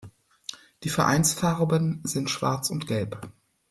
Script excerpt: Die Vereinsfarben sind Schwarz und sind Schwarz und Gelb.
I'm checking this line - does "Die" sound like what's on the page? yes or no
yes